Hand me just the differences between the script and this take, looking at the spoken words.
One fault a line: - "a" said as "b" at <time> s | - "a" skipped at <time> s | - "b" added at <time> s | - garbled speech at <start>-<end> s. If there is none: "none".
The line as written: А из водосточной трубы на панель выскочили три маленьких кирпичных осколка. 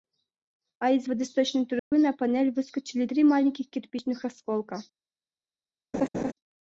none